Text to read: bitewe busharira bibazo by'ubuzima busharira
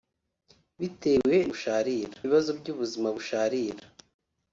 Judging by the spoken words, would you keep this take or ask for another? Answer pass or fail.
pass